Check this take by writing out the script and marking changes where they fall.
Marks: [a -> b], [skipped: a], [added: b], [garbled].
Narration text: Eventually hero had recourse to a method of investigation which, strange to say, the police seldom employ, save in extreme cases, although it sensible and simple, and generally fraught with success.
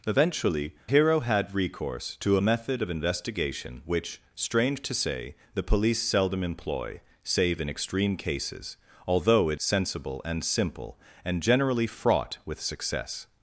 Eventually hero had recourse to a method of investigation which, strange to say, the police seldom employ, save in extreme cases, although it sensible and simple, and generally fraught with success.